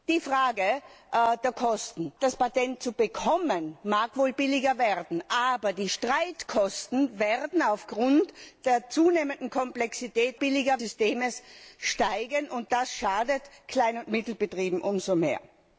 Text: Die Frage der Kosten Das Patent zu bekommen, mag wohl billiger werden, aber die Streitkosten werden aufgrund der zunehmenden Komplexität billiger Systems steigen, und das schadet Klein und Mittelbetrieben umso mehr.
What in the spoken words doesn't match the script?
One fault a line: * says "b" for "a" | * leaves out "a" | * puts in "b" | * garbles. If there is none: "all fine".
all fine